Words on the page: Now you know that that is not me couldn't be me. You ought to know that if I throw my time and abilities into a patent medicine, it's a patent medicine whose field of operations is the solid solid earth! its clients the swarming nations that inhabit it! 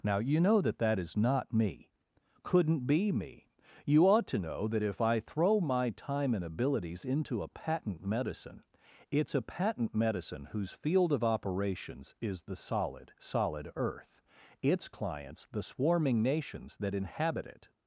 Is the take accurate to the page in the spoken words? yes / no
yes